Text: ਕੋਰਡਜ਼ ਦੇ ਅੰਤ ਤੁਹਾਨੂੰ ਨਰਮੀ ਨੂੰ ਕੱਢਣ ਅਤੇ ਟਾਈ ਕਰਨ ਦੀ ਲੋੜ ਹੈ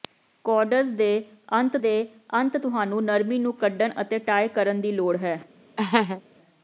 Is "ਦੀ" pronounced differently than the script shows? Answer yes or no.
no